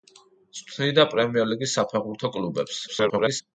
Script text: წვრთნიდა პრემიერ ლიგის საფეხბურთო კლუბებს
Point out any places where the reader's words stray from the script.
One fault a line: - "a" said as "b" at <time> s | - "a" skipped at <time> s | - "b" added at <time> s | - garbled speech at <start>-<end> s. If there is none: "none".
- garbled speech at 2.9-3.4 s